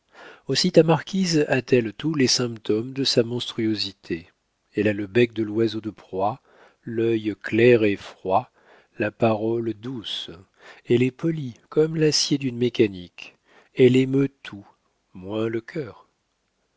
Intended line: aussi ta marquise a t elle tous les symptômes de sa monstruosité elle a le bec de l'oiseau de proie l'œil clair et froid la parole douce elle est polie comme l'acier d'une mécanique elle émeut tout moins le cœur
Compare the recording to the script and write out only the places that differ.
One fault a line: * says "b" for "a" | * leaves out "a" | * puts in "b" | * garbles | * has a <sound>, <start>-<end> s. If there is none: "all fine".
all fine